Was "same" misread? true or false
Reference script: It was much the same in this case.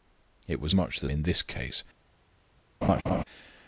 true